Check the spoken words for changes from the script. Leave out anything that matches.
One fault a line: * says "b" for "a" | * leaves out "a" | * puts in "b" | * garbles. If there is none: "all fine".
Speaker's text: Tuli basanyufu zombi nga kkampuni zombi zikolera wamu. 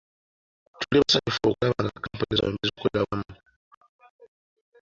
* says "okulaba" for "zombi"